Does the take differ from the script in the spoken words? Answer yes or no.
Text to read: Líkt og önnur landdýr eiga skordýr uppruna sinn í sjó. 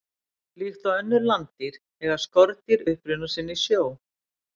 no